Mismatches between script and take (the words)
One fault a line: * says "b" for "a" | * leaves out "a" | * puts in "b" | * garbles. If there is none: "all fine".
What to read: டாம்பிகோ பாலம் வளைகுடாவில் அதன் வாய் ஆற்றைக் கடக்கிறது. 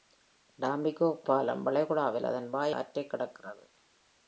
all fine